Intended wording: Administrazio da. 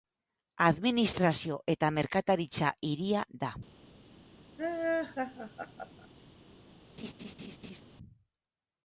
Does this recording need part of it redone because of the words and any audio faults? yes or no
yes